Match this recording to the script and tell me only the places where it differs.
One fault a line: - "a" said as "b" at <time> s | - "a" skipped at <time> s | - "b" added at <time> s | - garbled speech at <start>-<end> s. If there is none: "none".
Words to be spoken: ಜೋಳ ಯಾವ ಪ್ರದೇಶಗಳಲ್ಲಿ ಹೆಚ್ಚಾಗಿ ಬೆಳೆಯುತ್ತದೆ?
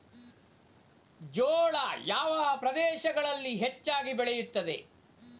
none